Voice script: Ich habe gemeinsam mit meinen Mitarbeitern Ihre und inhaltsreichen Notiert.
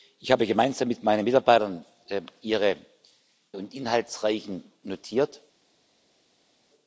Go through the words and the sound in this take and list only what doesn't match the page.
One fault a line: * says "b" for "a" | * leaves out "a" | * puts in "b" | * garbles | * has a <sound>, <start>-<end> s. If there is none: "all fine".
all fine